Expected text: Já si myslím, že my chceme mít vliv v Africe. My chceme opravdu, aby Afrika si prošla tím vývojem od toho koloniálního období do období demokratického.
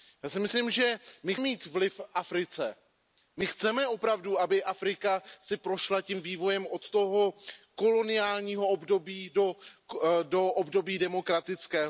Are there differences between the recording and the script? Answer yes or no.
yes